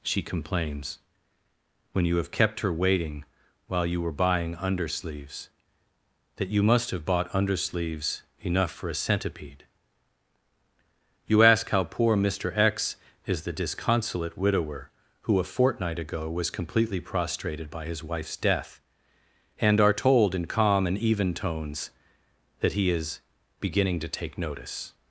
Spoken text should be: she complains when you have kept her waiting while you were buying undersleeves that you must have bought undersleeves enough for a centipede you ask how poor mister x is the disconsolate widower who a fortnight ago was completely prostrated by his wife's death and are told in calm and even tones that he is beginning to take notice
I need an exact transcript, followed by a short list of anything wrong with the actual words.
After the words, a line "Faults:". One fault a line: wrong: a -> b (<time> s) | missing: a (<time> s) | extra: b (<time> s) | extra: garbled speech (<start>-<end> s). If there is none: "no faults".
she complains when you have kept her waiting while you were buying undersleeves that you must have bought undersleeves enough for a centipede you ask how poor mister x is the disconsolate widower who a fortnight ago was completely prostrated by his wife's death and are told in calm and even tones that he is beginning to take notice
Faults:
no faults